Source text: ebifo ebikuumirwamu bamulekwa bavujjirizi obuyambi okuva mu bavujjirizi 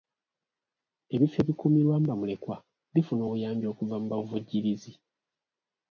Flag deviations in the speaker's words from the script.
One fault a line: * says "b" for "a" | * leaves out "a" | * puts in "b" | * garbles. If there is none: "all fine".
* says "bifuna" for "bavujjirizi"